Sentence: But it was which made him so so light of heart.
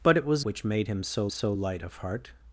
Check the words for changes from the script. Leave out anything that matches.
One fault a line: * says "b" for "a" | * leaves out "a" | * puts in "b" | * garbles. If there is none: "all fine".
all fine